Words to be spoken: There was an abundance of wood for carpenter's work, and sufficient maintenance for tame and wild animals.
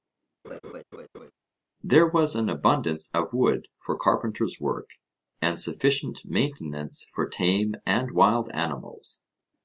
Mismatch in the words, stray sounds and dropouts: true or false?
true